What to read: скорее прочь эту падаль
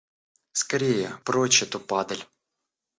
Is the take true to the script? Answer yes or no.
yes